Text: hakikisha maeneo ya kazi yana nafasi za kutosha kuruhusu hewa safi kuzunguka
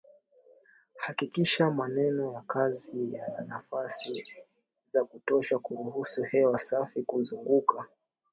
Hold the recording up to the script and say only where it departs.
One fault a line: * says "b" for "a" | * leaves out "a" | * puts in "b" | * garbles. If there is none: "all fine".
all fine